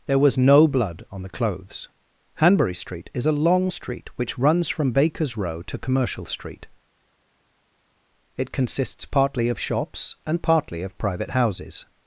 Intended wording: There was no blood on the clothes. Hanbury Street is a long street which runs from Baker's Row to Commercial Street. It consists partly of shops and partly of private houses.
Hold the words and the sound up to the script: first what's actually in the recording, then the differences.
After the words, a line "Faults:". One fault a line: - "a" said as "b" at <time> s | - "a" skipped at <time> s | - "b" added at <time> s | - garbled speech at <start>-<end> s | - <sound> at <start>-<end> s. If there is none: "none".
There was no blood on the clothes. Hanbury Street is a long street which runs from Baker's Row to Commercial Street. It consists partly of shops and partly of private houses.
Faults:
none